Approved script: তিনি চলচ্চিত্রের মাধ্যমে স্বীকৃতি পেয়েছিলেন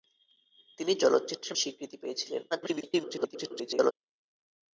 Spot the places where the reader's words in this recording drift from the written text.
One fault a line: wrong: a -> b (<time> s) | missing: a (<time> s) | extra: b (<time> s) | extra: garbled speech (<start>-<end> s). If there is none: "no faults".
missing: মাধ্যমে (1.6 s)
extra: garbled speech (2.5-3.9 s)